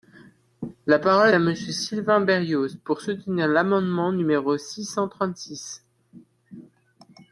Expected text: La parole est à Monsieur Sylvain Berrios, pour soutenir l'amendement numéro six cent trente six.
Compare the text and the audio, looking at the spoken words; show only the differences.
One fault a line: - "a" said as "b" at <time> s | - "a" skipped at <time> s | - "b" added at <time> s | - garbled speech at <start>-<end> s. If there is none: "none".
- "est" skipped at 1.3 s